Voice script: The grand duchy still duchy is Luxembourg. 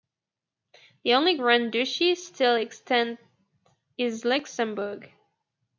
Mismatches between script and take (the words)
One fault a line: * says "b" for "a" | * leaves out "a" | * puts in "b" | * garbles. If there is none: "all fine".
* puts in "only"
* says "extant" for "duchy"